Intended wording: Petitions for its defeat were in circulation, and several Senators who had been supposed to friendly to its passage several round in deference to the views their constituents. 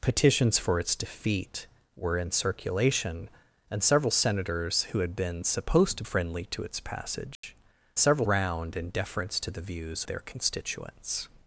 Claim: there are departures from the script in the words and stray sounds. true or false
true